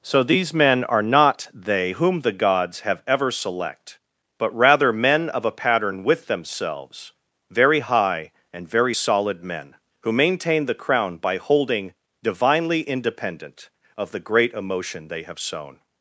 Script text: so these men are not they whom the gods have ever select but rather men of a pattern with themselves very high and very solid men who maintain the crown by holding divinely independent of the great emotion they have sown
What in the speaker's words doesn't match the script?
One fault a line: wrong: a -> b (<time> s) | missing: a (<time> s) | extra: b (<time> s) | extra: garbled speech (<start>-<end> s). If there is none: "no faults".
no faults